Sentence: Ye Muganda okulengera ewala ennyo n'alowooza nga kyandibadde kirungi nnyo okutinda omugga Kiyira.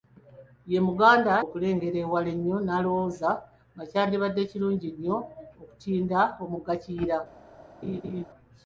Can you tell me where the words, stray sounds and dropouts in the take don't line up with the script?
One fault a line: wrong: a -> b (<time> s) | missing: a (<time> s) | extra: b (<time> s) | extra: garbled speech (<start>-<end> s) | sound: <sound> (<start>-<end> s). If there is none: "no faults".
sound: laugh (7.8-8.3 s)